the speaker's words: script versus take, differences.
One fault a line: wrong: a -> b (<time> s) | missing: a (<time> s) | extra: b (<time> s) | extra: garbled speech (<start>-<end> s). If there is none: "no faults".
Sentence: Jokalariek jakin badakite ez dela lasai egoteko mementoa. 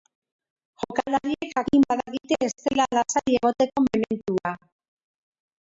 no faults